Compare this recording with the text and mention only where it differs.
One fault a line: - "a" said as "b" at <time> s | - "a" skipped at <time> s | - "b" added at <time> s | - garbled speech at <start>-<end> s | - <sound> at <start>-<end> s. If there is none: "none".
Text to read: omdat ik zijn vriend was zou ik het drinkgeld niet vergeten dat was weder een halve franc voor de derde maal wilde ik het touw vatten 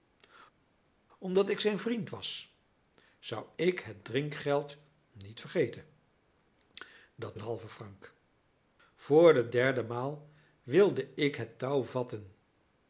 - "was weder" skipped at 7.4 s